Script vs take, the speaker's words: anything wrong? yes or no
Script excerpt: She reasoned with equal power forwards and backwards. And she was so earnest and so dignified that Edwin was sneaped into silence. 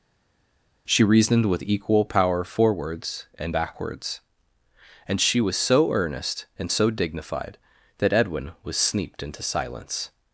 no